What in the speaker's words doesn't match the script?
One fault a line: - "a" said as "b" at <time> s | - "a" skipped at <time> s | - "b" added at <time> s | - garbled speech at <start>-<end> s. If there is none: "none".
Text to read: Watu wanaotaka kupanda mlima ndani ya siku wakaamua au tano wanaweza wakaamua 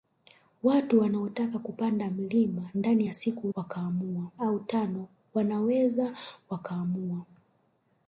none